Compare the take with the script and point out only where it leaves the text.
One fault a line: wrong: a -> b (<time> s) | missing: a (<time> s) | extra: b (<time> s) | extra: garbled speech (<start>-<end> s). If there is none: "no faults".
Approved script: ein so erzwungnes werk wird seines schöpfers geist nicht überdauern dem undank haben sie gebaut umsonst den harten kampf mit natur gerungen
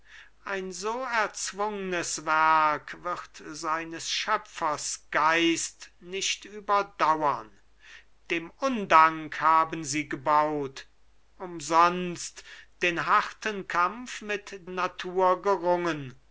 no faults